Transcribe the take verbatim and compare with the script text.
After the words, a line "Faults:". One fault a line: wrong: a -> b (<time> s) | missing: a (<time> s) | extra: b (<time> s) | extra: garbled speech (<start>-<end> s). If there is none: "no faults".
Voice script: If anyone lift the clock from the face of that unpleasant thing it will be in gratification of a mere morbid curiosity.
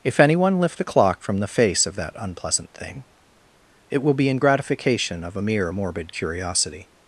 If anyone lift the clock from the face of that unpleasant thing it will be in gratification of a mere morbid curiosity.
Faults:
no faults